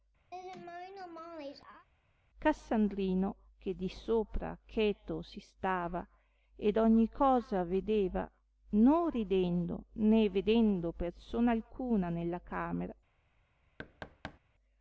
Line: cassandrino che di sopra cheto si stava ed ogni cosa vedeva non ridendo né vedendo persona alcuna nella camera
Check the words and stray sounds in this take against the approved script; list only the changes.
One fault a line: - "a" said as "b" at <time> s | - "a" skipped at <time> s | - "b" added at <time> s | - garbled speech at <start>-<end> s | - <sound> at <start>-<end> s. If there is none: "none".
- laugh at 0.3-1.9 s
- thud at 13.8-14.4 s